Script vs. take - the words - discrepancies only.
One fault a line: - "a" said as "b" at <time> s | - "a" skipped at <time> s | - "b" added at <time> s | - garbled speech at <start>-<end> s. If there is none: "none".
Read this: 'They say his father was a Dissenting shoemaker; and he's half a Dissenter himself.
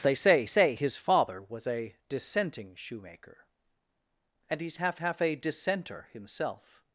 - "say" added at 0.5 s
- "half" added at 5.0 s